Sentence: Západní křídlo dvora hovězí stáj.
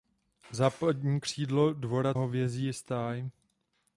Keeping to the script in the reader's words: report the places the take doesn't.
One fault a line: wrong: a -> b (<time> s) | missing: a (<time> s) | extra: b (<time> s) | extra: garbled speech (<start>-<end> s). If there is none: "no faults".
no faults